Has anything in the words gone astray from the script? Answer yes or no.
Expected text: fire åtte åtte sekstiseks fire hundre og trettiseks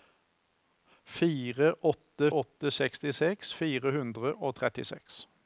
no